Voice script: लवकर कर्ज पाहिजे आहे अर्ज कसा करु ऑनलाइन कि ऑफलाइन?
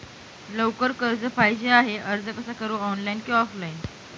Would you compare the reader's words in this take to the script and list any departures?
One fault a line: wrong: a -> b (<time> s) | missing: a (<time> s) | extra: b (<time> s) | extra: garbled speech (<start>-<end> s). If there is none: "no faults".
no faults